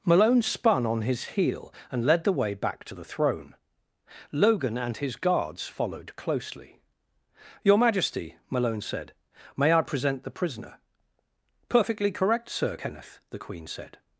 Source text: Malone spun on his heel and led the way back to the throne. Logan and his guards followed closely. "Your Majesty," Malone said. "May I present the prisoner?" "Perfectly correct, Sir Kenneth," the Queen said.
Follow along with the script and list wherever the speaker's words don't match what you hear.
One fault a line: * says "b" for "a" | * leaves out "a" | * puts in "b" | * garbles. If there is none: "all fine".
all fine